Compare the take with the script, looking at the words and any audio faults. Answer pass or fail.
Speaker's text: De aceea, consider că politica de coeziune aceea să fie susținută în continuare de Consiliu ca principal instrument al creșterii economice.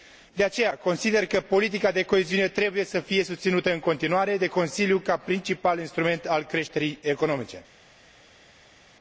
fail